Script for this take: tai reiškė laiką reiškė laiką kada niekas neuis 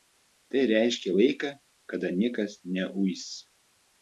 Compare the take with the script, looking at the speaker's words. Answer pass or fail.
fail